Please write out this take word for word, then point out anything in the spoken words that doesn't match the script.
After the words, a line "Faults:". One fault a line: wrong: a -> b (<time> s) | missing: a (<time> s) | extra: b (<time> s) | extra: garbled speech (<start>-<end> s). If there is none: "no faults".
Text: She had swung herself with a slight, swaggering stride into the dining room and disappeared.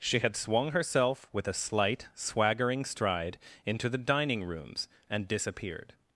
She had swung herself with a slight, swaggering stride into the dining rooms and disappeared.
Faults:
wrong: room -> rooms (4.4 s)